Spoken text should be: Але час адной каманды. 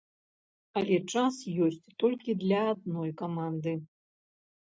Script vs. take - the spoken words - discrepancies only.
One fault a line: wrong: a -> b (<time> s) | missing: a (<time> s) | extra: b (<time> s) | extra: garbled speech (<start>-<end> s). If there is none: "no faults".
extra: ёсць толькі для (1.6 s)